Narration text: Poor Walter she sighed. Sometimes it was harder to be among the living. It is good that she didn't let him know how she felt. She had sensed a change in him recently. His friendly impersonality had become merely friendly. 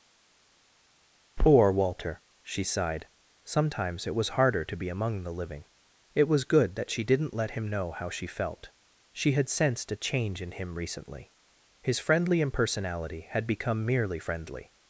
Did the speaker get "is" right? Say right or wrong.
wrong